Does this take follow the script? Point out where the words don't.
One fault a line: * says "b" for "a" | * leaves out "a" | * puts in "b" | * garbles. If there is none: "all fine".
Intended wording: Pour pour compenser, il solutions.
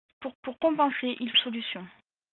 all fine